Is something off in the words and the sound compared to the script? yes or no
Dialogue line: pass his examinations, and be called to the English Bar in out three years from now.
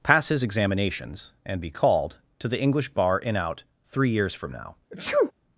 yes